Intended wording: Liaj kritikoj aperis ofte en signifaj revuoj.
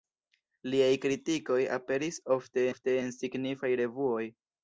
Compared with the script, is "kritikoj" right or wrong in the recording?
right